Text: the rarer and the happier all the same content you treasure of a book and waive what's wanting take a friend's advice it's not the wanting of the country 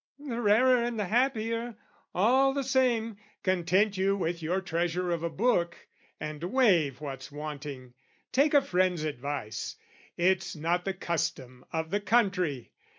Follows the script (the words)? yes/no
no